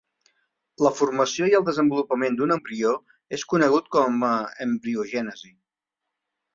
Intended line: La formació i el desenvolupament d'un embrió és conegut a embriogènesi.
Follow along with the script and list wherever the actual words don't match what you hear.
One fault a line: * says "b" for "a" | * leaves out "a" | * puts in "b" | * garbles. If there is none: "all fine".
* puts in "com"